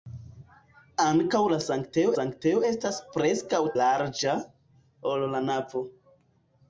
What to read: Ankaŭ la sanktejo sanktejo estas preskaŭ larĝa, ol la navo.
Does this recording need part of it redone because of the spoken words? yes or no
no